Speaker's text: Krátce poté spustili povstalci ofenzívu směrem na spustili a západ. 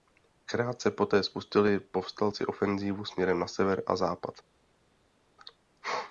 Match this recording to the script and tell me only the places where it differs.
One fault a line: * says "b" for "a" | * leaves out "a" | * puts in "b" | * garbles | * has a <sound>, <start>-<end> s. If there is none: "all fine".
* says "sever" for "spustili"